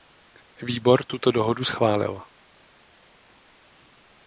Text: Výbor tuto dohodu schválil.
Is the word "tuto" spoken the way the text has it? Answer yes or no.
yes